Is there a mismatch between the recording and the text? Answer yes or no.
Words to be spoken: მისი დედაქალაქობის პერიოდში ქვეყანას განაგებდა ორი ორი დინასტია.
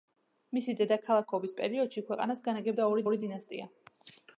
no